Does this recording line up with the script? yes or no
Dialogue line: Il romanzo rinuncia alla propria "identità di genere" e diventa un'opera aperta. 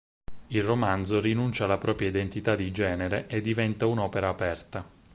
yes